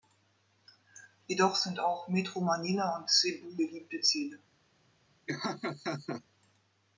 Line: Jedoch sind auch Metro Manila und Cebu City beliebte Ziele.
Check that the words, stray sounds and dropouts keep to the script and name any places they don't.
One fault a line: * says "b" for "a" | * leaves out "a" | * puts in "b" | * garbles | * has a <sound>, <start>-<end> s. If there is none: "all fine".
* leaves out "City"
* has a laugh, 5.3-6.2 s